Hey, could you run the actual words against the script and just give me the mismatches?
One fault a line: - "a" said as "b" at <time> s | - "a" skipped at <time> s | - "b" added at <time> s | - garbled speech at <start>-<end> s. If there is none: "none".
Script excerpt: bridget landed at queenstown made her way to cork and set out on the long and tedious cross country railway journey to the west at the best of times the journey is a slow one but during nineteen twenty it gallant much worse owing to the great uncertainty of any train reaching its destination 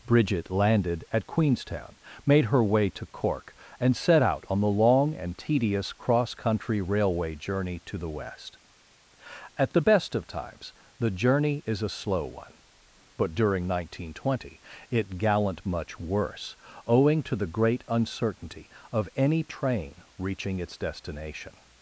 none